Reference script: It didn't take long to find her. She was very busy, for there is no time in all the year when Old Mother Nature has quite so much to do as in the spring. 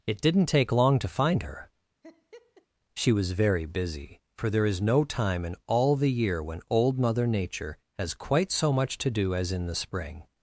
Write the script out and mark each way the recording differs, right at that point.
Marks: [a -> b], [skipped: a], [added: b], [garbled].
It didn't take long to find her. She was very busy, for there is no time in all the year when Old Mother Nature has quite so much to do as in the spring.